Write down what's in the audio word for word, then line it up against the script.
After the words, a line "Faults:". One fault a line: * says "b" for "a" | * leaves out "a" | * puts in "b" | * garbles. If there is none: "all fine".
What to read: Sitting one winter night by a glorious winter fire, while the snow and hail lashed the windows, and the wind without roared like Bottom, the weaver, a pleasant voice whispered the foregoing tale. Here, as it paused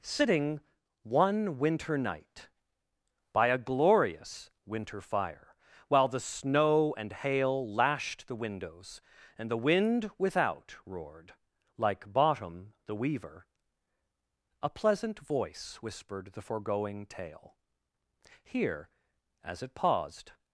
Sitting one winter night by a glorious winter fire, while the snow and hail lashed the windows, and the wind without roared like Bottom, the weaver, a pleasant voice whispered the foregoing tale. Here, as it paused
Faults:
all fine